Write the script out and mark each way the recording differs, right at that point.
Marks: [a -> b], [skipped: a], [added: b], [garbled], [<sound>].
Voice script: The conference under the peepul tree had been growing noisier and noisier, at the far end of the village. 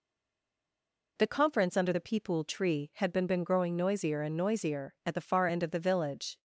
The conference under the peepul tree had been [added: been] growing noisier and noisier, at the far end of the village.